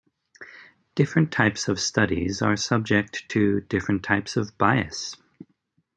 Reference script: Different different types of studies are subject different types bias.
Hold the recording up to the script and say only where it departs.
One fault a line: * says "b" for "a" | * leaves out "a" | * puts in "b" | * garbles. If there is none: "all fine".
* leaves out "different"
* puts in "to"
* puts in "of"